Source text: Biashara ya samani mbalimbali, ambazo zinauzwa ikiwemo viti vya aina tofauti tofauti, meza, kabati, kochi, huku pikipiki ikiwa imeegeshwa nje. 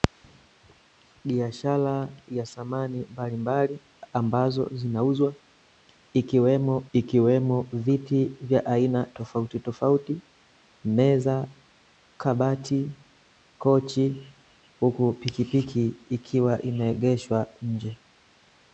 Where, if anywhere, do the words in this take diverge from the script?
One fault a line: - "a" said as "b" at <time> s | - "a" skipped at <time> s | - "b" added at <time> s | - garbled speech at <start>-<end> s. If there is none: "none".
- "ikiwemo" added at 6.9 s